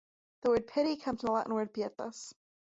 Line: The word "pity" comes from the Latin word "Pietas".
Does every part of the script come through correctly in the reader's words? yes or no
yes